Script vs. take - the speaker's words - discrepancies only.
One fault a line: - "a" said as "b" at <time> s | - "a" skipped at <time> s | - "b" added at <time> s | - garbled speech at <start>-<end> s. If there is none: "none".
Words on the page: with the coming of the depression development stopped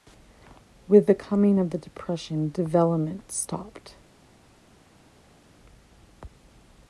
none